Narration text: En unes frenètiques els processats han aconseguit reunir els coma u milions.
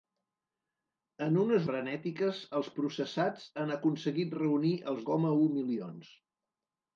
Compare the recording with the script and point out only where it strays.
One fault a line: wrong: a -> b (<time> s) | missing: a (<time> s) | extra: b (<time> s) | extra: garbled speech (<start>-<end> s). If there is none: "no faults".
no faults